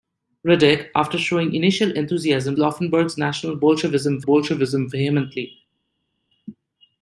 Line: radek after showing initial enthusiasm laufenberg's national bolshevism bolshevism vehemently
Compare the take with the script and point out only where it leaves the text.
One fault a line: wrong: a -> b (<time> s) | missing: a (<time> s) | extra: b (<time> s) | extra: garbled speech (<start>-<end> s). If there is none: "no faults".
no faults